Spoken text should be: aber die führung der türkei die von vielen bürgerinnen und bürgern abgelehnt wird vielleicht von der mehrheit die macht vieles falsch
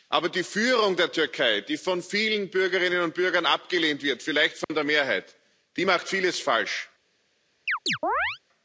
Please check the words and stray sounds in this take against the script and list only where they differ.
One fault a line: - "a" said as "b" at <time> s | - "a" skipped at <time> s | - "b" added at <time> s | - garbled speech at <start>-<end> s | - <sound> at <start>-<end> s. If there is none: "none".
- dropout at 4.6-4.7 s
- chirp at 7.7-8.4 s